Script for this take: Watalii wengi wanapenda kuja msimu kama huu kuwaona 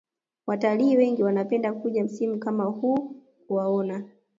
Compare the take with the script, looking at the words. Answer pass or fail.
pass